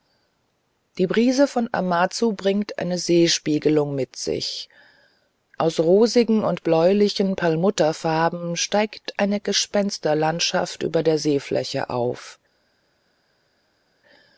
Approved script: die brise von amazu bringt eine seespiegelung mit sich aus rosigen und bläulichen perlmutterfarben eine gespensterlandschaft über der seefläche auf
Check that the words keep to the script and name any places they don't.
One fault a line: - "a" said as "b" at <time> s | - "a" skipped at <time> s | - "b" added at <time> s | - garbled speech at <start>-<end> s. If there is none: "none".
- "steigt" added at 8.6 s